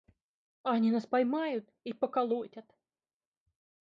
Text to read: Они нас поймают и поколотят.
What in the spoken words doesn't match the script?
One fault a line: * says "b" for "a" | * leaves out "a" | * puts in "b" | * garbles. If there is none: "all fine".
all fine